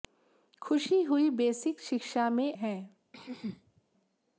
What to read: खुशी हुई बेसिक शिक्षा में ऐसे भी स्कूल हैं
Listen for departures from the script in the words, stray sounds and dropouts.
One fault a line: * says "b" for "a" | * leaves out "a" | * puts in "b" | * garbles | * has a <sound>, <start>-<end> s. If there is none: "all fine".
* leaves out "ऐसे भी स्कूल"
* has a throat clearing, 3.1-3.8 s